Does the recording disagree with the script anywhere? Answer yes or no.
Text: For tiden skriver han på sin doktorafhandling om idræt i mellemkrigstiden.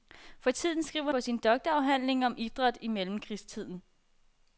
yes